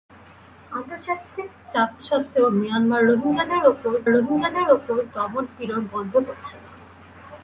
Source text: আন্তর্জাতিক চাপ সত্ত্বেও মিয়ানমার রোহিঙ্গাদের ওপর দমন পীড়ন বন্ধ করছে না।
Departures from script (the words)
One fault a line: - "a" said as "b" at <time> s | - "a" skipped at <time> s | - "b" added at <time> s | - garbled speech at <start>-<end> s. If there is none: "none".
- "রোহিঙ্গাদের ওপর" added at 4.1 s